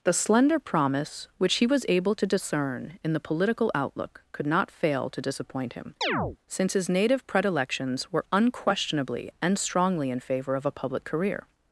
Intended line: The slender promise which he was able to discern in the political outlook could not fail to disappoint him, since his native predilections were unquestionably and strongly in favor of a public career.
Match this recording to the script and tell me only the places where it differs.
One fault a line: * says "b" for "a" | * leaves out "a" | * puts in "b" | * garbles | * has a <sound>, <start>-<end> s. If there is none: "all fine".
* has a chirp, 6.0-6.4 s